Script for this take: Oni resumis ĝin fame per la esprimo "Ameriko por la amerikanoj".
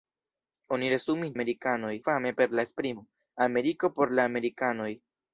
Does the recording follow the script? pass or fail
fail